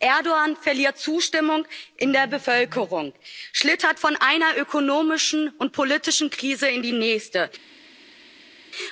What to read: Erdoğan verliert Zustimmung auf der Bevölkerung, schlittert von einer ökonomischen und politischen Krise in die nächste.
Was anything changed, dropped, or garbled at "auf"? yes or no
yes